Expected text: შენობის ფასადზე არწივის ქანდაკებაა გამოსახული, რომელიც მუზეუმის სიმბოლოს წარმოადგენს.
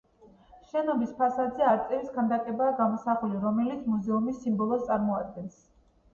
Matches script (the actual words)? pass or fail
pass